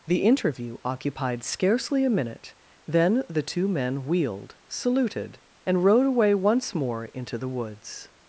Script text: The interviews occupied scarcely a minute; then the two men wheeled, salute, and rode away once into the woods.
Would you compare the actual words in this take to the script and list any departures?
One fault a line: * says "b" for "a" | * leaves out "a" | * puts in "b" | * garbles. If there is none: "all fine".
* says "interview" for "interviews"
* says "saluted" for "salute"
* puts in "more"